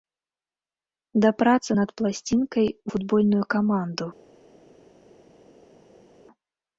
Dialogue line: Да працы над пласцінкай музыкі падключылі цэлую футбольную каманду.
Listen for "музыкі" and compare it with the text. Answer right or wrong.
wrong